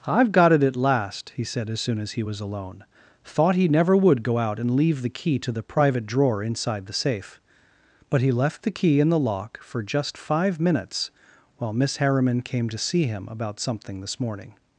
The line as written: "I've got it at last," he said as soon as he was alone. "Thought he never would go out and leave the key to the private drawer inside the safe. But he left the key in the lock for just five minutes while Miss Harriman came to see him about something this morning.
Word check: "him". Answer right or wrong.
right